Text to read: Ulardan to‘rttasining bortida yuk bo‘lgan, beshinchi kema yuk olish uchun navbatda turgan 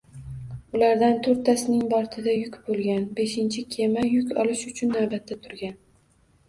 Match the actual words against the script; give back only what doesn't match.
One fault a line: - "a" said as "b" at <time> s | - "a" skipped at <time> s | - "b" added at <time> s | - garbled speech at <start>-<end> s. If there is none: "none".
none